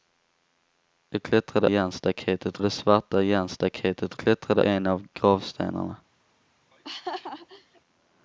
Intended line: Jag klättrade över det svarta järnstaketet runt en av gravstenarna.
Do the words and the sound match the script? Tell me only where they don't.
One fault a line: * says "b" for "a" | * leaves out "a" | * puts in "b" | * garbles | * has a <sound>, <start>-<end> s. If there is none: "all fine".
* says "järnstaketet" for "över"
* says "klättrade" for "runt"
* has a laugh, 6.7-7.8 s